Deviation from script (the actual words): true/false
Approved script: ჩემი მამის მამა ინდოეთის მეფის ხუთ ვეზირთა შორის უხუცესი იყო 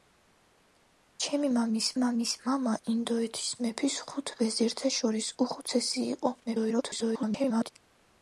true